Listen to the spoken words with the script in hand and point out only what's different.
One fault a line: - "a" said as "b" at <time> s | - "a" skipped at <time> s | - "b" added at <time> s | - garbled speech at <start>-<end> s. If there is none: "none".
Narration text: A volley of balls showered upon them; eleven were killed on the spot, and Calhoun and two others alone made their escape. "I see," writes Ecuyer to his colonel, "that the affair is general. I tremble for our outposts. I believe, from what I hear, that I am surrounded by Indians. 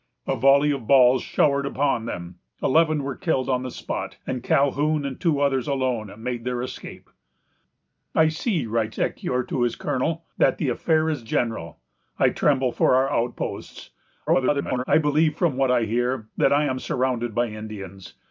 - garbled speech at 14.3-14.8 s